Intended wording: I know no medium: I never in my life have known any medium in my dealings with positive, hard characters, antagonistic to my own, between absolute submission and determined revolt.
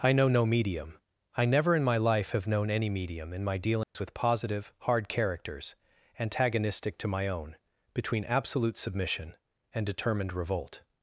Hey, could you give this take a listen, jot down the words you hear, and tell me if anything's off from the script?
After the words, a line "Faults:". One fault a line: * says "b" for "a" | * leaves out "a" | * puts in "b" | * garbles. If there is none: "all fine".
I know no medium: I never in my life have known any medium in my dealings with positive, hard characters, antagonistic to my own, between absolute submission and determined revolt.
Faults:
all fine